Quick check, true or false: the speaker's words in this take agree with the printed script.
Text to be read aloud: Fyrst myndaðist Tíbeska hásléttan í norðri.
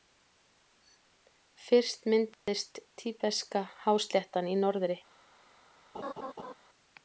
true